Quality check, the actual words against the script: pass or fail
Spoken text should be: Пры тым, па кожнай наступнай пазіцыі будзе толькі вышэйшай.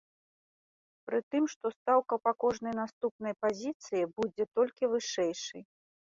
fail